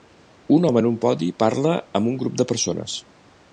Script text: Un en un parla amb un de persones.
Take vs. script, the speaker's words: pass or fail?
fail